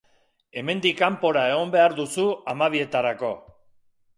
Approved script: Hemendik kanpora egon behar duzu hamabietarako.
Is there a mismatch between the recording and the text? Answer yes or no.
no